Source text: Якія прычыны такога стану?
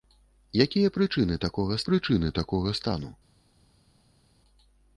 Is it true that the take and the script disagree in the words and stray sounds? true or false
true